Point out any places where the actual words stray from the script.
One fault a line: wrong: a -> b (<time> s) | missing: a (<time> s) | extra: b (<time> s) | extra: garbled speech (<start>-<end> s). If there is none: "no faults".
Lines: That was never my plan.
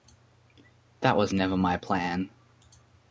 no faults